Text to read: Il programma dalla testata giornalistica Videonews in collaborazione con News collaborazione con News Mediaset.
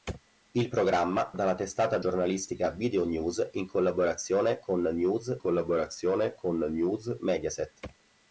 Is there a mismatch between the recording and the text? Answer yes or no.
no